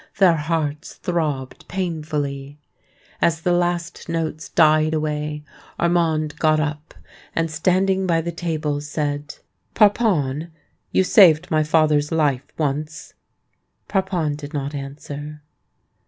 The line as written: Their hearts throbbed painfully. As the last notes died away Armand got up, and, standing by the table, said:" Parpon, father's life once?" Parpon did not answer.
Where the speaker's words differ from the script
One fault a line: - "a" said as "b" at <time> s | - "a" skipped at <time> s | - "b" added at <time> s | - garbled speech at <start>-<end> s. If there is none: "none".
- "you saved my" added at 10.9 s